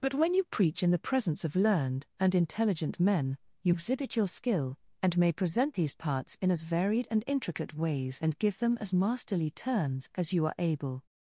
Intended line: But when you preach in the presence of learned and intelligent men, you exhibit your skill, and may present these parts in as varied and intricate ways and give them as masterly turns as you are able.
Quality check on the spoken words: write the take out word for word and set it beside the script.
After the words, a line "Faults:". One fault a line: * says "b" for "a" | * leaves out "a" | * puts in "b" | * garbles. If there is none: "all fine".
But when you preach in the presence of learned and intelligent men, you exhibit your skill, and may present these parts in as varied and intricate ways and give them as masterly turns as you are able.
Faults:
all fine